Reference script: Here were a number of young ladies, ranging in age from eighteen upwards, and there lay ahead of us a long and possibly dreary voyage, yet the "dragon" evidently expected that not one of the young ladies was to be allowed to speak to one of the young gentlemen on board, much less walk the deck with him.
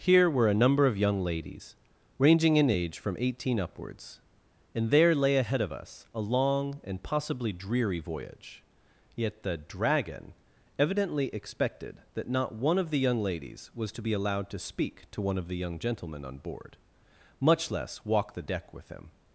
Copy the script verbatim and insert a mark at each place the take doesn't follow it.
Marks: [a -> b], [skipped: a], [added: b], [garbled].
Here were a number of young ladies, ranging in age from eighteen upwards, and there lay ahead of us a long and possibly dreary voyage, yet the "dragon" evidently expected that not one of the young ladies was to be allowed to speak to one of the young gentlemen on board, much less walk the deck with him.